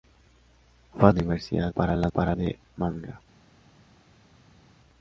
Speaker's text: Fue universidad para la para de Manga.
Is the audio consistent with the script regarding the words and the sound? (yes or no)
yes